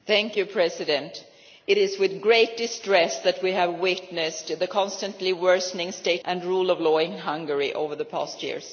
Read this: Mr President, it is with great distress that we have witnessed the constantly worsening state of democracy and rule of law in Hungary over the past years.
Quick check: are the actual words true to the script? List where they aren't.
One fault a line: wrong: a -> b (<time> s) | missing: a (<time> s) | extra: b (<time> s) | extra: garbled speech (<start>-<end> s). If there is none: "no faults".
missing: of democracy (6.2 s)